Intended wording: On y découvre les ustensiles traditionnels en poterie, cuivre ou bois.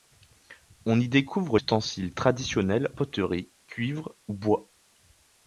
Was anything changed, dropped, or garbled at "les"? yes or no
yes